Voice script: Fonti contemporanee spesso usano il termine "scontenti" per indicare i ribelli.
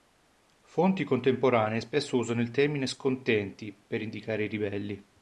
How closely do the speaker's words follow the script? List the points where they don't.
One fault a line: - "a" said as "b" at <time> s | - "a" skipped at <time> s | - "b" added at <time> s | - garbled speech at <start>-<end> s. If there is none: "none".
none